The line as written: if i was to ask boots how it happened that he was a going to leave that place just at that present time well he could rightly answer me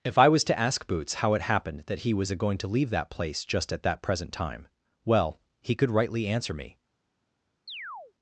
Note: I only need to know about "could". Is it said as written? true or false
true